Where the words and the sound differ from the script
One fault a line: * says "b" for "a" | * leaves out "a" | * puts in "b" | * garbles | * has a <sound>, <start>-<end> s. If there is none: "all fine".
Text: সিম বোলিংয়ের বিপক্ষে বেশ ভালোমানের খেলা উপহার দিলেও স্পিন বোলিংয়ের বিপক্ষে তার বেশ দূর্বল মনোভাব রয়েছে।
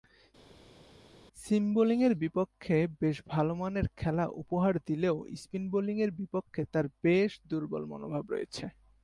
all fine